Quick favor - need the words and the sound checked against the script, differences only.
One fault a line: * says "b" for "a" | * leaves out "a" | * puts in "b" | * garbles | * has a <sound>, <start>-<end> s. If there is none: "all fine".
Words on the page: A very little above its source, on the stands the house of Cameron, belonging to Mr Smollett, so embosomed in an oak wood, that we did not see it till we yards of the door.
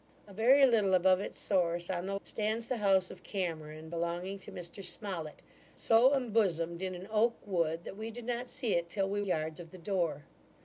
all fine